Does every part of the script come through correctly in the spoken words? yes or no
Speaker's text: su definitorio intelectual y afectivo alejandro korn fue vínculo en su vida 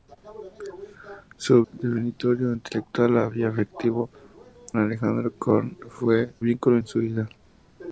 yes